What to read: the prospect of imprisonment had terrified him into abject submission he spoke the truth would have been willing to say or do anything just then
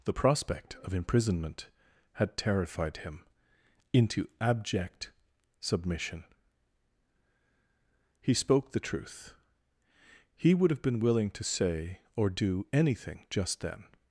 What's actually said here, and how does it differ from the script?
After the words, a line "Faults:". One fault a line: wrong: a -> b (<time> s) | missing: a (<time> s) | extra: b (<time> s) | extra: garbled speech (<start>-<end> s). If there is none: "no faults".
the prospect of imprisonment had terrified him into abject submission he spoke the truth he would have been willing to say or do anything just then
Faults:
extra: he (10.3 s)